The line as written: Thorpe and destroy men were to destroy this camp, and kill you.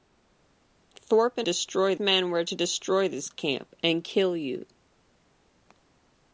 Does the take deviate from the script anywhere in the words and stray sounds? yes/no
no